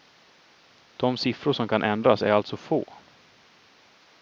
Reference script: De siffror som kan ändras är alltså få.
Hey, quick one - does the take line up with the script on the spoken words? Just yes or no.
yes